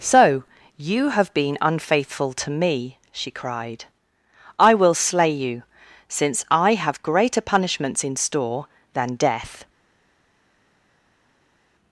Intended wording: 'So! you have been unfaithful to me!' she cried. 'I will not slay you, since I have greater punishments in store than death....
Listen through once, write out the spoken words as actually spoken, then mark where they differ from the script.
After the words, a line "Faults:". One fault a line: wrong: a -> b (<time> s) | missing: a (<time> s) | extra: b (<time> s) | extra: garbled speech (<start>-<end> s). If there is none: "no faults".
'So! you have been unfaithful to me!' she cried. 'I will slay you, since I have greater punishments in store than death....
Faults:
missing: not (5.0 s)